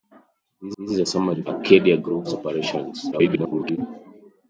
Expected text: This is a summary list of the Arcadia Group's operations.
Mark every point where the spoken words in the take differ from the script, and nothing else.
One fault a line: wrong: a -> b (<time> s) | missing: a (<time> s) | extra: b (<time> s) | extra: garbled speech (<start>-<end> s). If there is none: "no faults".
extra: this (0.8 s)
missing: list of the (1.4 s)
extra: garbled speech (3.1-3.8 s)